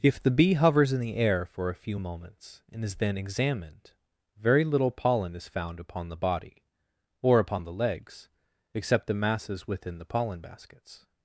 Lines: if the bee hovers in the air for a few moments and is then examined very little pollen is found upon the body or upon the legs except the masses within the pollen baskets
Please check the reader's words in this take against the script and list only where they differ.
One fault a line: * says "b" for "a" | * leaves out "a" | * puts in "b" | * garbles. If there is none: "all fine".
all fine